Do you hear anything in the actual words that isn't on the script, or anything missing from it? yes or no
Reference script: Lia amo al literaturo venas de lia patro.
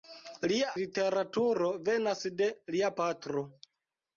yes